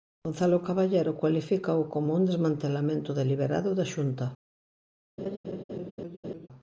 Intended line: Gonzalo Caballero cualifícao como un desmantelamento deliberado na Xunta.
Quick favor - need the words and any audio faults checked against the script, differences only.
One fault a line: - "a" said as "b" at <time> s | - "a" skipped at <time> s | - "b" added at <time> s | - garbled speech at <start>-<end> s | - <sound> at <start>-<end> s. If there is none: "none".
- "na" said as "da" at 3.8 s
- laugh at 5.2-6.5 s